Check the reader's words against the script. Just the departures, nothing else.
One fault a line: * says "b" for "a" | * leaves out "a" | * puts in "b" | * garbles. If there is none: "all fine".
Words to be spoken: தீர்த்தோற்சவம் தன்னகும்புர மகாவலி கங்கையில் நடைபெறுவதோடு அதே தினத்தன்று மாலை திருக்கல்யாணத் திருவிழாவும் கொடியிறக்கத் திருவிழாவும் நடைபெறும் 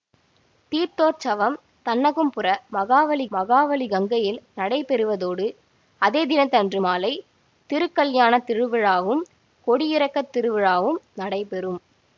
* puts in "மகாவலி"